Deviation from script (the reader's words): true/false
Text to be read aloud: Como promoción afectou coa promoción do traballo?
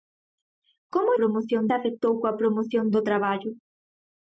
false